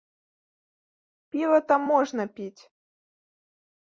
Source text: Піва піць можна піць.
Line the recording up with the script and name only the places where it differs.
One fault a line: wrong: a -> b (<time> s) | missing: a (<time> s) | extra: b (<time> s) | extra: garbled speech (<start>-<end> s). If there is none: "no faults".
wrong: піць -> там (1.7 s)